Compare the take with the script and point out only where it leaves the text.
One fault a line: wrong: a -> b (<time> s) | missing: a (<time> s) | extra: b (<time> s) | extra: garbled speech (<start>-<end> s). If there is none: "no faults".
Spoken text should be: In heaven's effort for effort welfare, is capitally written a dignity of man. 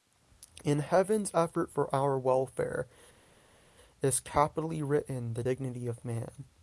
wrong: effort -> our (1.9 s)
wrong: a -> the (5.3 s)